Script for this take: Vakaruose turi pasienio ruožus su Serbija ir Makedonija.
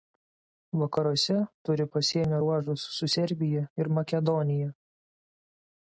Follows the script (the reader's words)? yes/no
yes